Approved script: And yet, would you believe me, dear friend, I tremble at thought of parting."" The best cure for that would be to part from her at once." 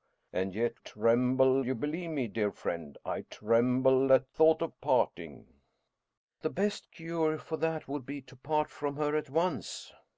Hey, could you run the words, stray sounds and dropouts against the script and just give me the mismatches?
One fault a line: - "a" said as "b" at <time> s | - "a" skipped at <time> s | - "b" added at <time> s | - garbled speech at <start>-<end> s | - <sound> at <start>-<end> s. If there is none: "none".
- "would" said as "tremble" at 0.8 s